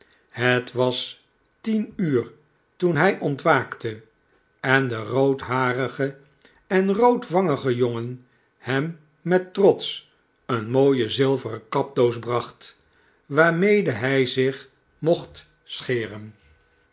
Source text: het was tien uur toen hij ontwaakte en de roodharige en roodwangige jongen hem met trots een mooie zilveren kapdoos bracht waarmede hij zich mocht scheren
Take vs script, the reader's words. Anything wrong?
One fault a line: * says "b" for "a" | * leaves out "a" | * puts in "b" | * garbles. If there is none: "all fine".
all fine